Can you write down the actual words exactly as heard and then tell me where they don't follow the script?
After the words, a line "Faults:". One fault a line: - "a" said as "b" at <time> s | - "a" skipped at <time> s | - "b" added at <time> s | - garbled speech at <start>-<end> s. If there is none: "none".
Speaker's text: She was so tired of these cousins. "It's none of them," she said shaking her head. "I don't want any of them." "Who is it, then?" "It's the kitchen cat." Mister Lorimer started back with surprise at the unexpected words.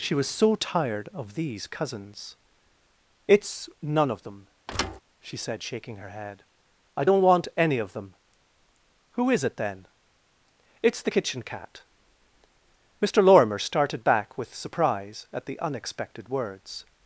She was so tired of these cousins. "It's none of them," she said shaking her head. "I don't want any of them." "Who is it, then?" "It's the kitchen cat." Mister Lorimer started back with surprise at the unexpected words.
Faults:
none